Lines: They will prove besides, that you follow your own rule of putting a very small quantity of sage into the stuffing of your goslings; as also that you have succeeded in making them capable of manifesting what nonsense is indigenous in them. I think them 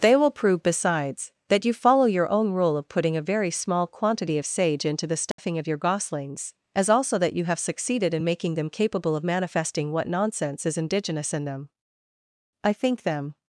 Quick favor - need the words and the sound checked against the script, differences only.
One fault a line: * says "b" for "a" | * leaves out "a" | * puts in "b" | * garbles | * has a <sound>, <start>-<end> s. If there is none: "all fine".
* has a dropout, 5.3-5.4 s